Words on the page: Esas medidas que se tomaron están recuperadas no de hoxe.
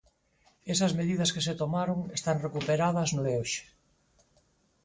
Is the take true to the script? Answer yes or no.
yes